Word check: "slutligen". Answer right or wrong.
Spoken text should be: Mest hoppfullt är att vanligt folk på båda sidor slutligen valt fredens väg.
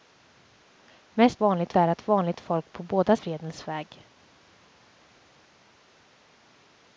wrong